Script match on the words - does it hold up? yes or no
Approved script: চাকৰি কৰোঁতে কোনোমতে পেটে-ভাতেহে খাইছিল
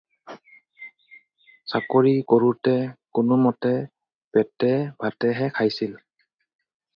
yes